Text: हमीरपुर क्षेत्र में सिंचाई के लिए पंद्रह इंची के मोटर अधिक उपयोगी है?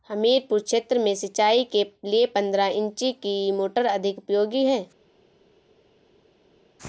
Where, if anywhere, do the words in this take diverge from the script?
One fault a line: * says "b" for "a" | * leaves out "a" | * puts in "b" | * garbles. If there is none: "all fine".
* says "की" for "के"